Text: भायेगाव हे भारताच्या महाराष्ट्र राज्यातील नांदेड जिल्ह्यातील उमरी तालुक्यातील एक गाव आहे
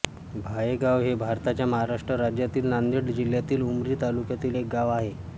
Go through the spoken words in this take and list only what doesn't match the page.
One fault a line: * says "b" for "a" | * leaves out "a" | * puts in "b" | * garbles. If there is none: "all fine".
all fine